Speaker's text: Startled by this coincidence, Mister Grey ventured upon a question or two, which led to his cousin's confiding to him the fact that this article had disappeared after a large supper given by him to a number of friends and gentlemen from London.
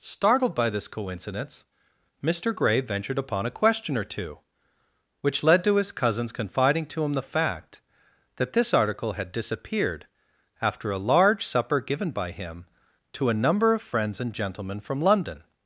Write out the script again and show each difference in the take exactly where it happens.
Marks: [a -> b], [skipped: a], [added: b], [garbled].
Startled by this coincidence, Mister Grey ventured upon a question or two, which led to his cousin's confiding to him the fact that this article had disappeared after a large supper given by him to a number of friends and gentlemen from London.